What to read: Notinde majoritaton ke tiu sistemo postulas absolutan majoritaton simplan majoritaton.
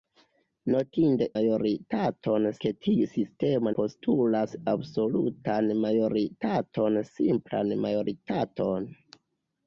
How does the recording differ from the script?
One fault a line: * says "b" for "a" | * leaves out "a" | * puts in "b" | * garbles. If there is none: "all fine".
all fine